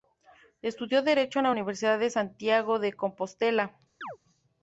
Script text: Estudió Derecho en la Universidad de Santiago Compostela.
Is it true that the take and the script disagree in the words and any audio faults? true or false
true